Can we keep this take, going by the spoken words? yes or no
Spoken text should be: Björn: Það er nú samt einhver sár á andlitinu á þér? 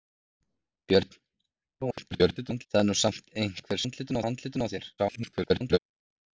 no